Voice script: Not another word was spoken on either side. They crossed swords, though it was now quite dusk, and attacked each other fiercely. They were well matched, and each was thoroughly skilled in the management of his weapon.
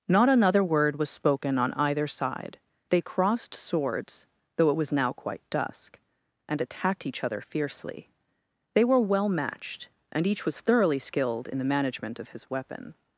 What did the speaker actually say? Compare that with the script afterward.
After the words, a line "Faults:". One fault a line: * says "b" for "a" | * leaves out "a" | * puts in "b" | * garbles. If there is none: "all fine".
Not another word was spoken on either side. They crossed swords, though it was now quite dusk, and attacked each other fiercely. They were well matched, and each was thoroughly skilled in the management of his weapon.
Faults:
all fine